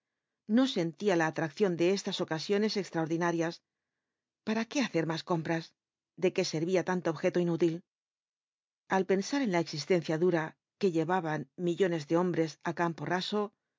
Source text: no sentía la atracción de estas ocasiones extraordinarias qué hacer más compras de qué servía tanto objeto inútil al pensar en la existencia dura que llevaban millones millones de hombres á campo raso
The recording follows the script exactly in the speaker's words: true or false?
false